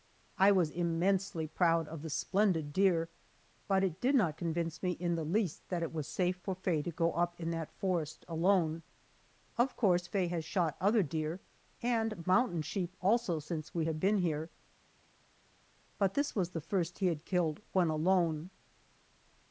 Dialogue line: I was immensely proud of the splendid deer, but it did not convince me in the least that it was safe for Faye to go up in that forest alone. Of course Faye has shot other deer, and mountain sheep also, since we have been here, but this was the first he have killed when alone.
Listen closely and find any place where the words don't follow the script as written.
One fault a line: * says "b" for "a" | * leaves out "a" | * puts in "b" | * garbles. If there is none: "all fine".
* says "had" for "have"